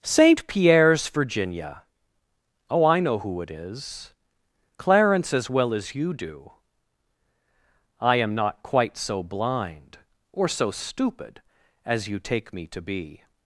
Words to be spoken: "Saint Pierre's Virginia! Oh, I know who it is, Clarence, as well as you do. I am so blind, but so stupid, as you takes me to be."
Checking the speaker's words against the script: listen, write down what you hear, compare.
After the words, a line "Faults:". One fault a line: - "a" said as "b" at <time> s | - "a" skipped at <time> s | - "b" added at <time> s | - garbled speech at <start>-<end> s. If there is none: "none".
"Saint Pierre's Virginia! Oh, I know who it is, Clarence, as well as you do. I am not quite so blind, or so stupid, as you take me to be."
Faults:
- "not quite" added at 8.3 s
- "but" said as "or" at 10.3 s
- "takes" said as "take" at 12.2 s